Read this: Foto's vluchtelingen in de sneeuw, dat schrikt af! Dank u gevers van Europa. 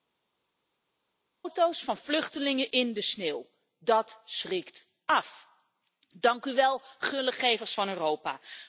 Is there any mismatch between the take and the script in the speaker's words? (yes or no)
yes